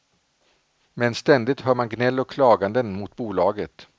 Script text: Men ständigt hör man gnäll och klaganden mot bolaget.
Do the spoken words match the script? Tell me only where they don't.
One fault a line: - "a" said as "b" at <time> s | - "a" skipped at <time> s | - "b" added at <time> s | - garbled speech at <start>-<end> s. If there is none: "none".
none